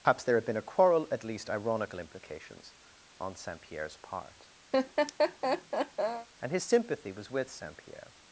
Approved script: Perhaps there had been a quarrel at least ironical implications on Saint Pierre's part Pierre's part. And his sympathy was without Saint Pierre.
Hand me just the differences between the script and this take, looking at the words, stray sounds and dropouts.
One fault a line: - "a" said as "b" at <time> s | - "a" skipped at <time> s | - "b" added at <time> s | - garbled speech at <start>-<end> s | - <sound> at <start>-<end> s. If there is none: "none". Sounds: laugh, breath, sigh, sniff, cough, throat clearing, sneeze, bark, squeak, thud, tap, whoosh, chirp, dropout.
- "Pierre's part" skipped at 4.5 s
- laugh at 4.7-6.3 s
- "without" said as "with" at 7.3 s